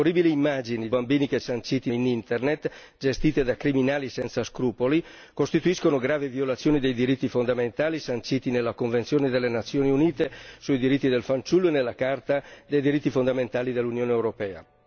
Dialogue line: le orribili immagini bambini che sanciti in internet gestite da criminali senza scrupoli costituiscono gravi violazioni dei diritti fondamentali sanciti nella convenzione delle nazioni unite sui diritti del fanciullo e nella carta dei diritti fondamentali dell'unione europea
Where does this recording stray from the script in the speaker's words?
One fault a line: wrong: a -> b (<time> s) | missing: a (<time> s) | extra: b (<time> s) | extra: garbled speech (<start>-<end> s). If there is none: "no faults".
no faults